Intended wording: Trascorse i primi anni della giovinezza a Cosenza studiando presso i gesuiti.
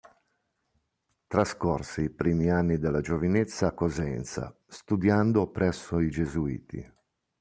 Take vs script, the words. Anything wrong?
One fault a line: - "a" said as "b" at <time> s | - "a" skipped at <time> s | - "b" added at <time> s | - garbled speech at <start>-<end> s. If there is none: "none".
none